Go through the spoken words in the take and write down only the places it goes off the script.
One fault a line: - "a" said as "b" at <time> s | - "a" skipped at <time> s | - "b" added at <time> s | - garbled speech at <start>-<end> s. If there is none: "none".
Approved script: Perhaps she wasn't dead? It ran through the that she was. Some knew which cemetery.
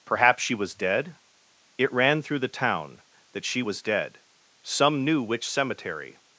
- "wasn't" said as "was" at 0.6 s
- "town" added at 2.5 s
- "dead" added at 3.8 s